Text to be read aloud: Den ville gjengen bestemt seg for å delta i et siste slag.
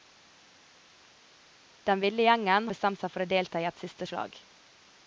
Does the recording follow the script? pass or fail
pass